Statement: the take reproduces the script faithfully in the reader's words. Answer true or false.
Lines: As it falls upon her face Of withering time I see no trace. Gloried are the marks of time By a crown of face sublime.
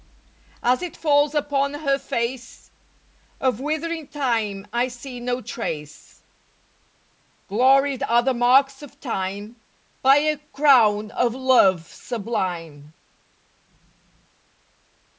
false